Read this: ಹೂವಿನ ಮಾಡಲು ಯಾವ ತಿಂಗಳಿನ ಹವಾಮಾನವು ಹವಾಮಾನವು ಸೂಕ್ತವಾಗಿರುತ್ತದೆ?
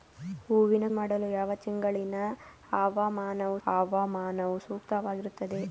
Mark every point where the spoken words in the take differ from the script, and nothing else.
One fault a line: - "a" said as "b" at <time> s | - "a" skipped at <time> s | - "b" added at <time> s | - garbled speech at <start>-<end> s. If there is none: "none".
none